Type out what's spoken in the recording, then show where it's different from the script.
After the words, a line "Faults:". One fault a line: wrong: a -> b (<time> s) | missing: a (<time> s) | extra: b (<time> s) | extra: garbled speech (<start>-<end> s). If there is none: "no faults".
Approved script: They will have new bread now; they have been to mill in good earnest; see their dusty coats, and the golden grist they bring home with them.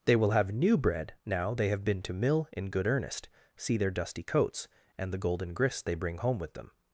They will have new bread now; they have been to mill in good earnest; see their dusty coats, and the golden grist they bring home with them.
Faults:
no faults